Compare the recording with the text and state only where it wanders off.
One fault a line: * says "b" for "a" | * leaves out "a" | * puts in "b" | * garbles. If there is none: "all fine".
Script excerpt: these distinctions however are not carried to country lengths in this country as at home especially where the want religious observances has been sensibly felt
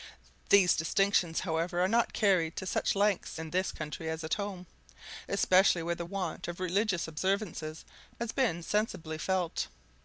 * says "such" for "country"
* puts in "of"